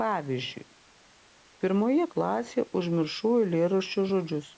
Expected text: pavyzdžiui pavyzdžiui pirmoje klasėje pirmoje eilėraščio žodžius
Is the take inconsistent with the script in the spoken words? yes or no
yes